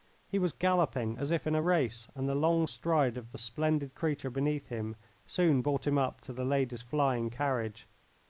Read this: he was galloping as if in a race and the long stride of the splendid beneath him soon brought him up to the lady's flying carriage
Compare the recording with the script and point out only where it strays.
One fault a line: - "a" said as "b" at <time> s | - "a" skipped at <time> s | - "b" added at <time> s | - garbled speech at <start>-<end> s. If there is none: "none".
- "creature" added at 3.9 s